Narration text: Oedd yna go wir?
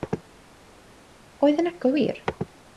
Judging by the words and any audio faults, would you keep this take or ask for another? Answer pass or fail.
pass